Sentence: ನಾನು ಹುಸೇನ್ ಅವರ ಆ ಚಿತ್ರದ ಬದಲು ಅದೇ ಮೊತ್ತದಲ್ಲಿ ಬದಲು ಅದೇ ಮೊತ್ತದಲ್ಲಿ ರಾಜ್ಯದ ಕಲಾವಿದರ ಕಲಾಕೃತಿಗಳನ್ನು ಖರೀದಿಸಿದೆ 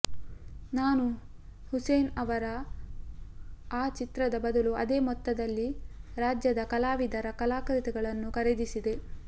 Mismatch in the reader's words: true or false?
true